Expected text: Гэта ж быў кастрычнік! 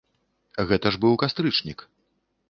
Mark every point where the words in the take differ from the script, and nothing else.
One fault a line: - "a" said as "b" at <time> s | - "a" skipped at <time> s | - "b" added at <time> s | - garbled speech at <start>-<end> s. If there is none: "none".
none